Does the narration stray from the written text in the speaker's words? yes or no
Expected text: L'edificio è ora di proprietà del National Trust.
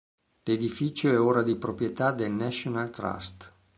no